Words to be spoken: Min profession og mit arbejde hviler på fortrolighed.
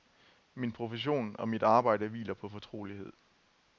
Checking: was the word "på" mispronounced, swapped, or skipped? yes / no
no